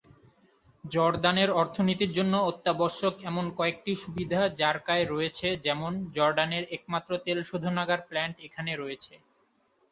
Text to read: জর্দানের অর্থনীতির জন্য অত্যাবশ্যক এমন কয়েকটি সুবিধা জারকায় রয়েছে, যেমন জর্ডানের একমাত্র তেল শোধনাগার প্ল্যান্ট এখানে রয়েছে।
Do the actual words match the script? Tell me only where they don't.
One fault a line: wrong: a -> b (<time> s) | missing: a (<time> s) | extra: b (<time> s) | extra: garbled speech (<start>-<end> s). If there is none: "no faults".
no faults